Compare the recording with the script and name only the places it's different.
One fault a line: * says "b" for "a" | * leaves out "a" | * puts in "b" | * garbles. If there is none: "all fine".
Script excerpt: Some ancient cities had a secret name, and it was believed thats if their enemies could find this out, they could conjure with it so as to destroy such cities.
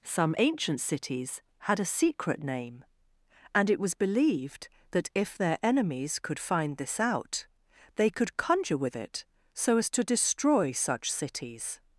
* says "that" for "thats"